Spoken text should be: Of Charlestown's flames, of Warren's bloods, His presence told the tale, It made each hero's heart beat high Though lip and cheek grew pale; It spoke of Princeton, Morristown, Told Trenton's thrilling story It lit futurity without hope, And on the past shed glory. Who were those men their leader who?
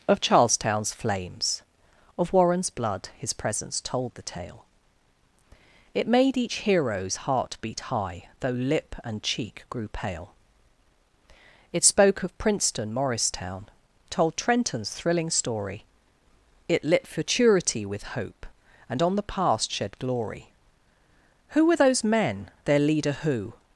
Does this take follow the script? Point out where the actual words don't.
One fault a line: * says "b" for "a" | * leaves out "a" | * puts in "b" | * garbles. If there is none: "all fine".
* says "blood" for "bloods"
* says "with" for "without"